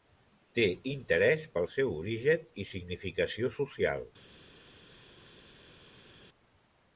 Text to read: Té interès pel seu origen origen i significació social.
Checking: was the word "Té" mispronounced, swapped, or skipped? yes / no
no